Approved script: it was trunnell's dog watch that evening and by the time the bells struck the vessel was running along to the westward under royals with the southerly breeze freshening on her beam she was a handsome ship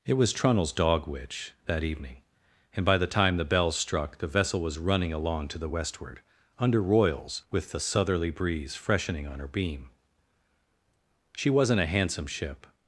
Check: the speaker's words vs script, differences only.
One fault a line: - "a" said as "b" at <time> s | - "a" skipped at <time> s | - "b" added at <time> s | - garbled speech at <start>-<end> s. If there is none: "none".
- "watch" said as "witch" at 1.1 s
- "was" said as "wasn't" at 11.5 s